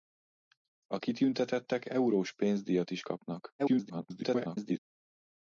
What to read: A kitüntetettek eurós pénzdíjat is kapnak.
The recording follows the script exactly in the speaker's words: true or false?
false